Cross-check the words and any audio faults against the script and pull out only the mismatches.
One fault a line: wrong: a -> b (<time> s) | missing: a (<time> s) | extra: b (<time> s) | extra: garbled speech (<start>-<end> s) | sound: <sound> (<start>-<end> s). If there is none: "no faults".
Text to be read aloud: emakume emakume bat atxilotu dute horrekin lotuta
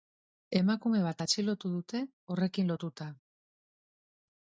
missing: emakume (1.0 s)